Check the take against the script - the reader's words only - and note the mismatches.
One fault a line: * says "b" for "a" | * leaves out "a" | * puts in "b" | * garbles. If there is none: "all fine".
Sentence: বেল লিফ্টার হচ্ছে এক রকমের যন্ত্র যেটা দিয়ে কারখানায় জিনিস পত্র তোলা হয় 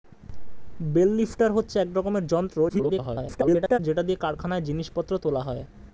* garbles